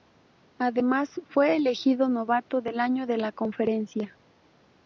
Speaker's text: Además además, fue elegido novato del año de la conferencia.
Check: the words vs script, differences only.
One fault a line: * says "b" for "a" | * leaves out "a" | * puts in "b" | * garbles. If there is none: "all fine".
* leaves out "además"